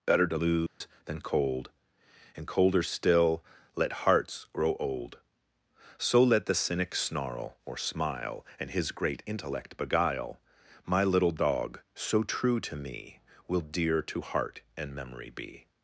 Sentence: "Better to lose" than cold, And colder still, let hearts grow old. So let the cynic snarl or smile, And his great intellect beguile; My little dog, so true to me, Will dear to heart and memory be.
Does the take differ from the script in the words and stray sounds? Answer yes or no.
yes